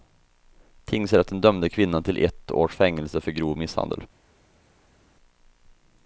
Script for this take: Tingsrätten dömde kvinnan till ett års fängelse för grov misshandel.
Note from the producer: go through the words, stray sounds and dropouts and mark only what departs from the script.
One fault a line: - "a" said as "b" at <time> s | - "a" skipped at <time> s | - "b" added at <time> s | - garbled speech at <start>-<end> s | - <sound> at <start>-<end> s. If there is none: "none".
none